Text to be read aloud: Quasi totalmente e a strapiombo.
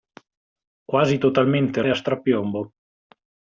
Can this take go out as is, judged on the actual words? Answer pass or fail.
pass